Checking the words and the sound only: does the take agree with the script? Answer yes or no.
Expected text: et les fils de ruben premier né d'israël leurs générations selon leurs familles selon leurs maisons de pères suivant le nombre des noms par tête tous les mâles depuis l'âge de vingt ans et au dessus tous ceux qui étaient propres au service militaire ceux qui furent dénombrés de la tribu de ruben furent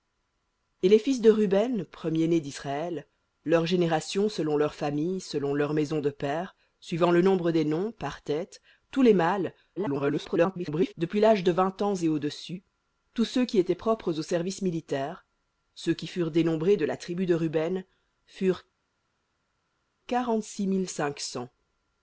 no